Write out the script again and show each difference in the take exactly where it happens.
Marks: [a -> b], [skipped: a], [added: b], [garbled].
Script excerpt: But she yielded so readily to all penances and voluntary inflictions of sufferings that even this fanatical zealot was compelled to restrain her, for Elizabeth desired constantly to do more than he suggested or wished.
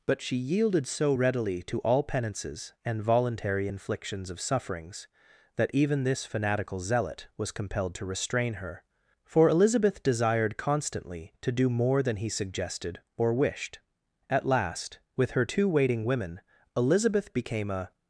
But she yielded so readily to all penances and voluntary inflictions of sufferings that even this fanatical zealot was compelled to restrain her, for Elizabeth desired constantly to do more than he suggested or wished. [added: At last with her two waiting women Elizabeth became a]